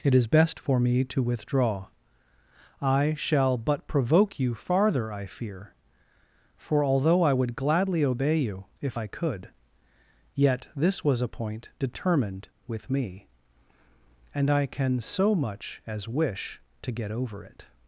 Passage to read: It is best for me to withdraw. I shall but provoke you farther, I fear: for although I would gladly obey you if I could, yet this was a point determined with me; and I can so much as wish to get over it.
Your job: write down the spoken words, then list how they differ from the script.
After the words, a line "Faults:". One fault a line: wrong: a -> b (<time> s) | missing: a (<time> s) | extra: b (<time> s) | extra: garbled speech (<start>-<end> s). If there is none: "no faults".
It is best for me to withdraw. I shall but provoke you farther, I fear: for although I would gladly obey you if I could, yet this was a point determined with me; and I can so much as wish to get over it.
Faults:
no faults